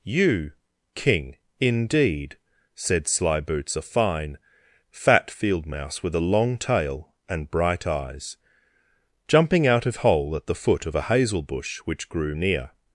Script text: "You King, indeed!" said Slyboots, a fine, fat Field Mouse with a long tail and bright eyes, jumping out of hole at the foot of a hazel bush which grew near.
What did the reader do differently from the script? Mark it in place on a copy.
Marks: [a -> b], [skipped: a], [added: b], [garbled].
"You King, indeed!" said Slyboots, a fine, fat Field Mouse with a long tail and bright eyes, jumping out of hole at the foot of a hazel bush which grew near.